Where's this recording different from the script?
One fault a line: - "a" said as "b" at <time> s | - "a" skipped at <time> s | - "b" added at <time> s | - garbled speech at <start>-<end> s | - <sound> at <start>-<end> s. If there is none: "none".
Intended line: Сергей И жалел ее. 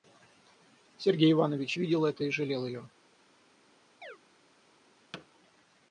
- "Иванович видел это" added at 1.3 s
- chirp at 4.0-4.2 s
- thud at 5.1-5.3 s